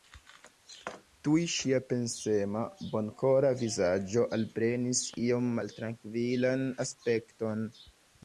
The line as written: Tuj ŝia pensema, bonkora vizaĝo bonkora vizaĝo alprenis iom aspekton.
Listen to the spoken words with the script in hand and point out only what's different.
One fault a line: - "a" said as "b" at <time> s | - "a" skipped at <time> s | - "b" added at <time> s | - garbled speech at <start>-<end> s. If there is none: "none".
- "bonkora vizaĝo" skipped at 4.2 s
- "maltrankvilan" added at 5.6 s